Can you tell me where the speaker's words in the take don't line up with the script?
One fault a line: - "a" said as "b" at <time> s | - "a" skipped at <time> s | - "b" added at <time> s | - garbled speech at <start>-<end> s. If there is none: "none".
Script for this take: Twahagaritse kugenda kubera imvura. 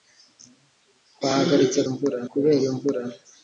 - "kugenda" said as "imvura" at 1.9 s